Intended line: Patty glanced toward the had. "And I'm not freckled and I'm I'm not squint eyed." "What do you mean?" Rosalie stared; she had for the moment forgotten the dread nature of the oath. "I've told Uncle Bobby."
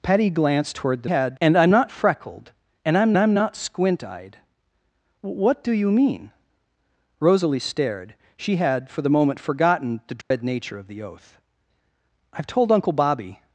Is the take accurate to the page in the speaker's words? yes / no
yes